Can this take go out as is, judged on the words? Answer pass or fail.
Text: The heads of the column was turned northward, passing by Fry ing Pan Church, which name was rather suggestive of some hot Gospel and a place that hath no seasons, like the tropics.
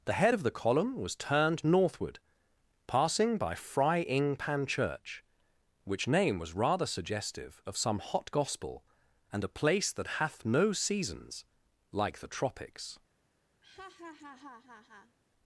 fail